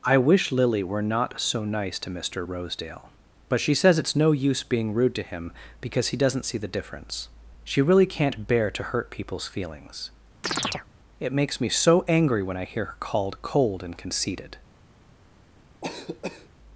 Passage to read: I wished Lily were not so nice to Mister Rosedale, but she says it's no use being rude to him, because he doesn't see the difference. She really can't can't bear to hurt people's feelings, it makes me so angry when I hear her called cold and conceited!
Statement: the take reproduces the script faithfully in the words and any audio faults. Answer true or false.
false